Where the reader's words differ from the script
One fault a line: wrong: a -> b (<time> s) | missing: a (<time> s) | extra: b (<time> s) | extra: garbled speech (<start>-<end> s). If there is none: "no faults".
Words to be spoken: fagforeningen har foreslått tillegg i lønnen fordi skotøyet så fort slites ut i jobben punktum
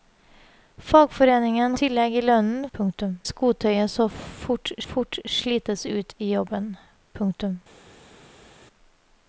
missing: har foreslått (1.8 s)
wrong: fordi -> punktum (2.7 s)
extra: fort (4.9 s)